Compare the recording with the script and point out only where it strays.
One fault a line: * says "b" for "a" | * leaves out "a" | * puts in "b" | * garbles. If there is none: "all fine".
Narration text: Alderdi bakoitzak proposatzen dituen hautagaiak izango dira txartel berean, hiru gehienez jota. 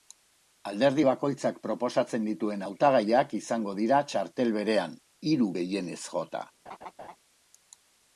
all fine